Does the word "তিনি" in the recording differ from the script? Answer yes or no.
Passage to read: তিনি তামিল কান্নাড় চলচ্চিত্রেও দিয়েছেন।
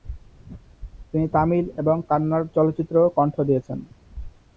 no